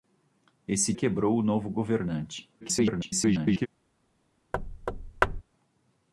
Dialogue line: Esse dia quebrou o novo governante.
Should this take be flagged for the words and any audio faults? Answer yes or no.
yes